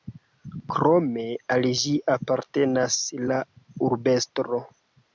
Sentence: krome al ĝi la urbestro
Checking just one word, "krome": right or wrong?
right